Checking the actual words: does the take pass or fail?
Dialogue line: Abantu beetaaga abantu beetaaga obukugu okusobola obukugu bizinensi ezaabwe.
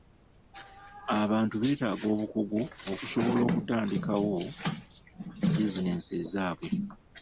fail